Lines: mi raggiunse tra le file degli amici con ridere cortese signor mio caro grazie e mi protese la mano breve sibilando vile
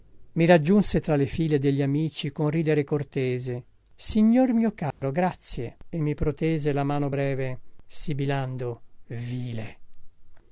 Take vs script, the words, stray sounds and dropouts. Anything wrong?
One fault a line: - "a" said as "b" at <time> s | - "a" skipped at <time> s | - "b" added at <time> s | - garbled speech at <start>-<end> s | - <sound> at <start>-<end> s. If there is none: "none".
- dropout at 4.9-5.0 s